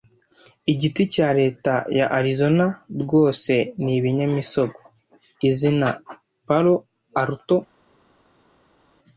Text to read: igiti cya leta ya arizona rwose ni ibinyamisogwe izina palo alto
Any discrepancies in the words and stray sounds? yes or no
no